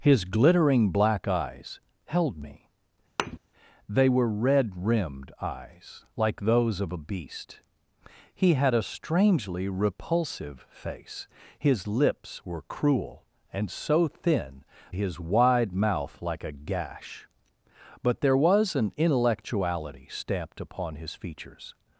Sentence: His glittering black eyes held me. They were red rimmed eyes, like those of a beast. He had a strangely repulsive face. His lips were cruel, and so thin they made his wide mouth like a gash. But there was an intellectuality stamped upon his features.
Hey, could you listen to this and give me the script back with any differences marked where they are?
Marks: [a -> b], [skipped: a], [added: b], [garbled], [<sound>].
His glittering black eyes held me. [thud] They were red rimmed eyes, like those of a beast. He had a strangely repulsive face. His lips were cruel, and so thin [skipped: they made] his wide mouth like a gash. But there was an intellectuality stamped upon his features.